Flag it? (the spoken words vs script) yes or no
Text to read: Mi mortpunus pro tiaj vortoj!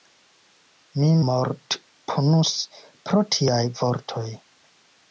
no